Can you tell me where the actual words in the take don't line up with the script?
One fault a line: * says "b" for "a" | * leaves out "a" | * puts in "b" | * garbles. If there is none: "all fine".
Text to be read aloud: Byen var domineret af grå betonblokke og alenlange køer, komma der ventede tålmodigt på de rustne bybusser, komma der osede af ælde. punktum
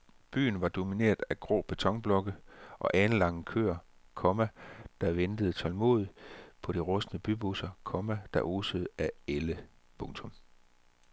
all fine